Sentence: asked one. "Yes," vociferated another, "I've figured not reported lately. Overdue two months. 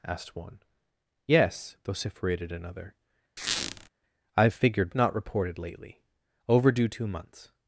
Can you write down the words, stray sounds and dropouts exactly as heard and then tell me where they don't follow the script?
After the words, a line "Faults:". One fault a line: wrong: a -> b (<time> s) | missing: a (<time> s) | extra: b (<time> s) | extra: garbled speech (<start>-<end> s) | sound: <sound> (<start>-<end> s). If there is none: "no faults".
asked one. "Yes," vociferated another, "I've figured not reported lately. Overdue two months.
Faults:
sound: squeak (3.4-3.9 s)